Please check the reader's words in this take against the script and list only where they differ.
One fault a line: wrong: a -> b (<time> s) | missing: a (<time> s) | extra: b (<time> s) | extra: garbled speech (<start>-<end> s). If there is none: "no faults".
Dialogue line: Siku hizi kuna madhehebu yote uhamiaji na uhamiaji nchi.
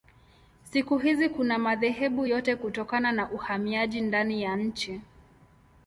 wrong: uhamiaji -> kutokana (2.6 s)
extra: ndani ya (4.0 s)